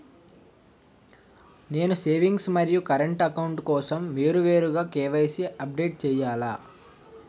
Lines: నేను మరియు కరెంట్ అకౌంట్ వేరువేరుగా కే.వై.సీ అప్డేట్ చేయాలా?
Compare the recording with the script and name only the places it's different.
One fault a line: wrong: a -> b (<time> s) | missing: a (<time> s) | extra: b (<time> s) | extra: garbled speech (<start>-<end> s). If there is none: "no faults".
extra: సేవింగ్స్ (1.9 s)
extra: కోసం (3.7 s)